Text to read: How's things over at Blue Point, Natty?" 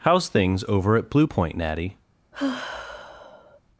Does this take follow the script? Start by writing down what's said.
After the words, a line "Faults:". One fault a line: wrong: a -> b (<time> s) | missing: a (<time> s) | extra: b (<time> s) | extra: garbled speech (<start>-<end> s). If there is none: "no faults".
How's things over at Blue Point, Natty?"
Faults:
no faults